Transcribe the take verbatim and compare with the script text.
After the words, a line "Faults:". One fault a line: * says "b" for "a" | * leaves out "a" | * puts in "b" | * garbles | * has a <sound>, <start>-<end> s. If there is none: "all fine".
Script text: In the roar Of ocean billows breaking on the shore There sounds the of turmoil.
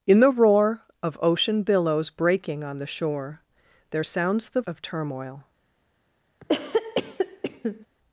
In the roar Of ocean billows breaking on the shore There sounds the of turmoil.
Faults:
* has a cough, 6.4-7.9 s